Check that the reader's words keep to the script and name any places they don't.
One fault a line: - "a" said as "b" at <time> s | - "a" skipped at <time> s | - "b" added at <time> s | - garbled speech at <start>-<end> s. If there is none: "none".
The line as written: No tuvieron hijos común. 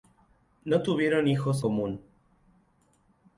none